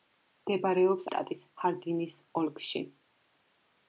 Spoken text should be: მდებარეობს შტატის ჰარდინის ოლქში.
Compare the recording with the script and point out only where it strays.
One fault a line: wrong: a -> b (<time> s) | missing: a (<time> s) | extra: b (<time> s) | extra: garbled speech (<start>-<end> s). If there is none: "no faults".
no faults